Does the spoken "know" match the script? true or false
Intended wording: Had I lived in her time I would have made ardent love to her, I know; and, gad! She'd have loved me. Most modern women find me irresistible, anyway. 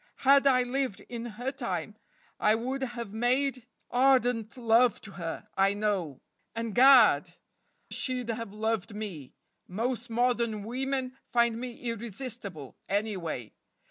true